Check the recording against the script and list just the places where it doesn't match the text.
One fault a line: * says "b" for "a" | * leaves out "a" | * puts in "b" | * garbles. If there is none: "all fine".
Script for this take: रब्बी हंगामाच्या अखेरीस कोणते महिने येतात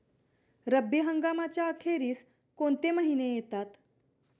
all fine